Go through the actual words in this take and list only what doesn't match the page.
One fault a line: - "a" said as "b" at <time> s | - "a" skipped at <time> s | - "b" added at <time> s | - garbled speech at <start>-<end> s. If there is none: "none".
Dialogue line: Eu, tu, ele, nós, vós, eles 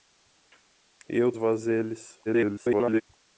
- "tu ele nós" skipped at 1.3 s
- garbled speech at 2.3-3.0 s